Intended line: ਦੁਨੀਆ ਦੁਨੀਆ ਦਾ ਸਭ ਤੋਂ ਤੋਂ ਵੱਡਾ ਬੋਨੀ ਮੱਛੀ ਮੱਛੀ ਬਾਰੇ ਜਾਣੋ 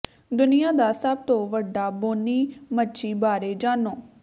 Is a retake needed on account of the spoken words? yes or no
yes